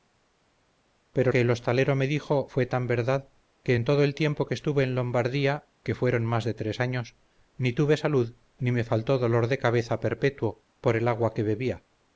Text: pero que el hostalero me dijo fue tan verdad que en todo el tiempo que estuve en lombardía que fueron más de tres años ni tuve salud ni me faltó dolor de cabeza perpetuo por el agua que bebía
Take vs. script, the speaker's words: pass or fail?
pass